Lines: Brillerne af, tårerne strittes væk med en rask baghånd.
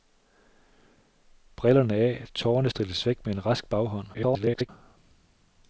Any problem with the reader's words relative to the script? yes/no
yes